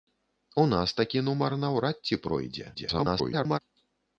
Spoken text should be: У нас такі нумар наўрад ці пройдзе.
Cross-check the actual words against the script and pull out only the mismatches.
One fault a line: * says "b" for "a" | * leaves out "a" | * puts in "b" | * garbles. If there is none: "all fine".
* garbles